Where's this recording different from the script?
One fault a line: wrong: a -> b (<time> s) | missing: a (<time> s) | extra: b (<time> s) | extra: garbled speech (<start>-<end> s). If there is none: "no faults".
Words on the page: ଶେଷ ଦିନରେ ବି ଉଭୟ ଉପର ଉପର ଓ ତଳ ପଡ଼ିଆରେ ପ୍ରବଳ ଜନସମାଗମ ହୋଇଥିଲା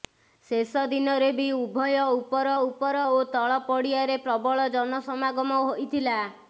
no faults